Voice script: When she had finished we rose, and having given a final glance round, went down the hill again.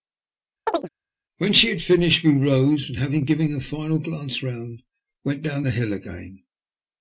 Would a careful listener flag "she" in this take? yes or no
no